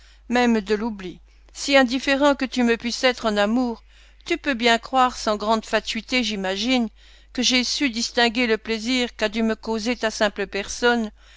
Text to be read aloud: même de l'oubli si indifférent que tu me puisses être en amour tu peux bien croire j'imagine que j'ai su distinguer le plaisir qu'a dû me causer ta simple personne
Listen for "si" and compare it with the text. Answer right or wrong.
right